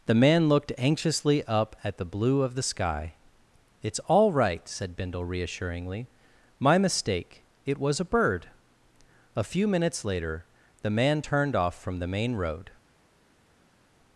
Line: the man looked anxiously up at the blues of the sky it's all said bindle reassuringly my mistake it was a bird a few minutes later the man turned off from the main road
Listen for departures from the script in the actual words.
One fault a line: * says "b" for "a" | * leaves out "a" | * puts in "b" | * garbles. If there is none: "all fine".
* says "blue" for "blues"
* puts in "right"